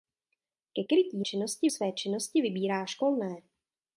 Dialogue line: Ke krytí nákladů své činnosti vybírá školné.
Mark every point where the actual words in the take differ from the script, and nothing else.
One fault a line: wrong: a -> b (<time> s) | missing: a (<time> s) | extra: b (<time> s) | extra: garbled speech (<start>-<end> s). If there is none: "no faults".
wrong: nákladů -> činnosti (1.2 s)